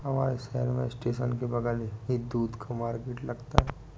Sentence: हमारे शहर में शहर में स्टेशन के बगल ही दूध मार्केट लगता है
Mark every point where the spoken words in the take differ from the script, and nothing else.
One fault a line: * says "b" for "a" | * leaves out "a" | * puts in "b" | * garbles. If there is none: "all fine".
* leaves out "शहर में"
* puts in "का"